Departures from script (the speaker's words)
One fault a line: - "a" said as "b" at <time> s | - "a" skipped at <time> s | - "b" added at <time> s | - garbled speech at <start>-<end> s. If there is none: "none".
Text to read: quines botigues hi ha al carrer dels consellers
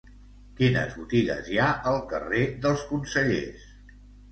none